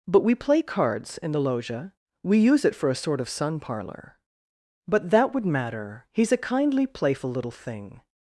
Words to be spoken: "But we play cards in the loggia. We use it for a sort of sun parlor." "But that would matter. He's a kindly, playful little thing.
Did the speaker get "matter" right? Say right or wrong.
right